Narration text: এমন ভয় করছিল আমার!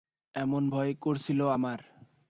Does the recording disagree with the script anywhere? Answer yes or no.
no